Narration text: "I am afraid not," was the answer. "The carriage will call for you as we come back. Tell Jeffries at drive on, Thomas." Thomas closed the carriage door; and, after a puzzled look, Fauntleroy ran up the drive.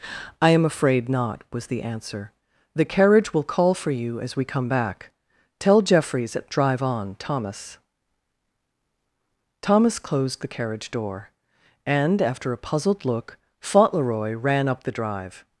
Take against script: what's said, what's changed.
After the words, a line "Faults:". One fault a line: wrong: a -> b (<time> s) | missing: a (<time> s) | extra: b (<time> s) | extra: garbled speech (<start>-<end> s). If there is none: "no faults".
"I am afraid not," was the answer. "The carriage will call for you as we come back. Tell Jeffries at drive on, Thomas." Thomas closed the carriage door; and, after a puzzled look, Fauntleroy ran up the drive.
Faults:
no faults